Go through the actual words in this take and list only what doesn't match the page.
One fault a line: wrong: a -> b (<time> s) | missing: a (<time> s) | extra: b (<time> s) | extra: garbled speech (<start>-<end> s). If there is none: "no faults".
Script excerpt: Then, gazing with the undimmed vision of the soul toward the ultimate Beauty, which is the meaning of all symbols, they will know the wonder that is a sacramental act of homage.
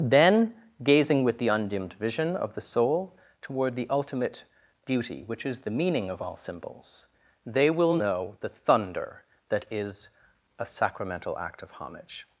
wrong: wonder -> thunder (8.5 s)